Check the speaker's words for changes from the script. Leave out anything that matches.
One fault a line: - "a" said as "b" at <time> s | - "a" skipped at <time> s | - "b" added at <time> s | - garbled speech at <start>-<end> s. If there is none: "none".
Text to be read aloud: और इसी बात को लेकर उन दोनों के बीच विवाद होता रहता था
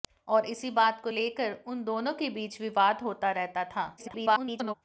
- garbled speech at 4.0-4.7 s